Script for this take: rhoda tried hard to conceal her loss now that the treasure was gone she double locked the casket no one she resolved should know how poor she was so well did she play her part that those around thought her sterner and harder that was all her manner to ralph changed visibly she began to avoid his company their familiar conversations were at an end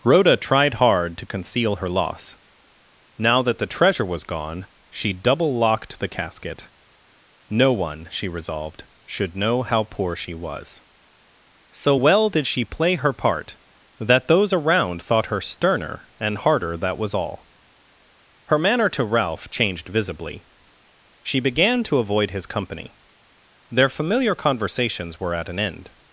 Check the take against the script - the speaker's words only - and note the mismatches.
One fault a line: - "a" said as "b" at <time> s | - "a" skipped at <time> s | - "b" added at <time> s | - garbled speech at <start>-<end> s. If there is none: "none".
none